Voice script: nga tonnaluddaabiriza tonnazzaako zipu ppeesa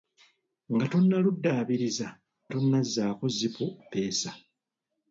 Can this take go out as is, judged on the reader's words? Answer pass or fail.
pass